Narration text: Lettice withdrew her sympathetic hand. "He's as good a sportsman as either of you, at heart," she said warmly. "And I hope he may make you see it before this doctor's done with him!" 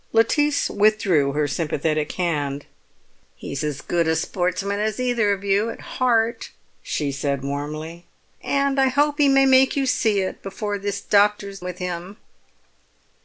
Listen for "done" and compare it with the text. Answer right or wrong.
wrong